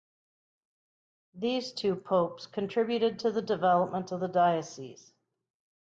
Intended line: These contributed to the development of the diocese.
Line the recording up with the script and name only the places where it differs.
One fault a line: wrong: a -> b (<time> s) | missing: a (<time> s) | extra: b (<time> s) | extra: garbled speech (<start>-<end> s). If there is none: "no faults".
extra: two popes (1.7 s)